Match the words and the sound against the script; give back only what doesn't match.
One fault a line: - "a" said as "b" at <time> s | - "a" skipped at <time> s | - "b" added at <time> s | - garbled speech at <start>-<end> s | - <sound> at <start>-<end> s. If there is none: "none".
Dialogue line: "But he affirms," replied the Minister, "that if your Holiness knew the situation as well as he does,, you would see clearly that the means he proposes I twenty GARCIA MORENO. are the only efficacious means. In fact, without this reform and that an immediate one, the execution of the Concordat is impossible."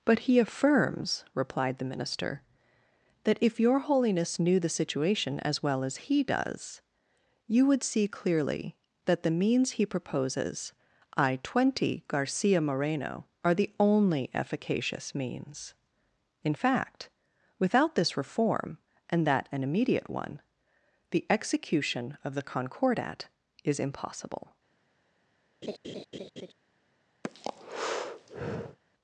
- laugh at 25.6-26.5 s
- breath at 27.2-28.8 s